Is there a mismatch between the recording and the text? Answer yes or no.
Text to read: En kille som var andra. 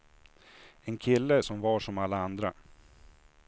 yes